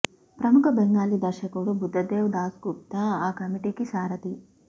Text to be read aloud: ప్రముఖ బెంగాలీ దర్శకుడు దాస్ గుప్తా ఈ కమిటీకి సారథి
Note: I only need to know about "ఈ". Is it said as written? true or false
false